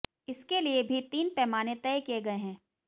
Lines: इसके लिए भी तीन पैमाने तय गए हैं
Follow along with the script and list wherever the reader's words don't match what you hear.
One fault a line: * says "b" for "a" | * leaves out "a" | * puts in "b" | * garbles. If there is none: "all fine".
* puts in "किए"